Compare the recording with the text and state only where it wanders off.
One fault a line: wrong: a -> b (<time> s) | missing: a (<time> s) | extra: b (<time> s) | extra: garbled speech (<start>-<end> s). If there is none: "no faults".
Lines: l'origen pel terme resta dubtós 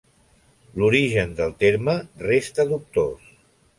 wrong: pel -> del (1.4 s)